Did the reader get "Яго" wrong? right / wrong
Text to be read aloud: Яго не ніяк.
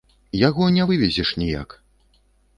right